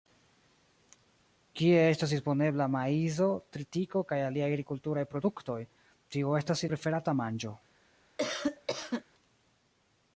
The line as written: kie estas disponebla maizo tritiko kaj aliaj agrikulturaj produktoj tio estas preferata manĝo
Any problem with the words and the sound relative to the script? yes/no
yes